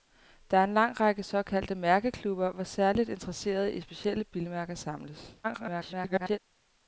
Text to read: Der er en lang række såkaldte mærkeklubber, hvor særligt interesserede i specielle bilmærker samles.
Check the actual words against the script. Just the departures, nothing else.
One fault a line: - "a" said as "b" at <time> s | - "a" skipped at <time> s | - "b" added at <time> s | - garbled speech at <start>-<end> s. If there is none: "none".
- garbled speech at 5.4-6.4 s